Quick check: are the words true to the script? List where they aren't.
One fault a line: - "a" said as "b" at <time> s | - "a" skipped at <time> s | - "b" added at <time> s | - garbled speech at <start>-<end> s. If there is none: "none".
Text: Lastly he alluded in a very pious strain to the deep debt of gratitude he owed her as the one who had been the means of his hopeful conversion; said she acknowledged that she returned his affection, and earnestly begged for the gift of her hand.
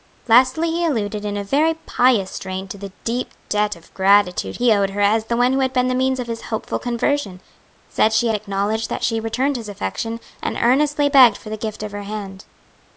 none